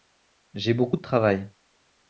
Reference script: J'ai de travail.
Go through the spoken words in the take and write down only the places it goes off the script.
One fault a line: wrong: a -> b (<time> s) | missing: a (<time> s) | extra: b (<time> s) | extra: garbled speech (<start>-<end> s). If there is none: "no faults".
extra: beaucoup (0.7 s)